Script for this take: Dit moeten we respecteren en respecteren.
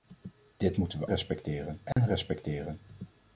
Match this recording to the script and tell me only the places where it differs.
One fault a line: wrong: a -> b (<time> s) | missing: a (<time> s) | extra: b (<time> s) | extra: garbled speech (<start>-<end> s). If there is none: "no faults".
no faults